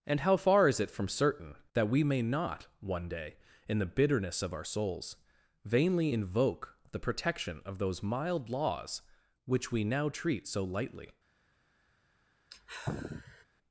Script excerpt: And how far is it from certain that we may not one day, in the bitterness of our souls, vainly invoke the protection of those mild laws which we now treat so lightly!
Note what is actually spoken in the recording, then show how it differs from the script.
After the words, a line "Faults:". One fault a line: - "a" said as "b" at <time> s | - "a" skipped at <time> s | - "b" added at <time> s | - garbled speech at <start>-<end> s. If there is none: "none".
And how far is it from certain that we may not one day, in the bitterness of our souls, vainly invoke the protection of those mild laws which we now treat so lightly!
Faults:
none